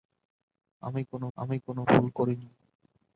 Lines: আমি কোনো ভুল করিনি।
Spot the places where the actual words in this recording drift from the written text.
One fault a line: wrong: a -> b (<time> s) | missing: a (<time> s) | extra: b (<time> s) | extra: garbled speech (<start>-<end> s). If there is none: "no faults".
extra: আমি কোনো (1.4 s)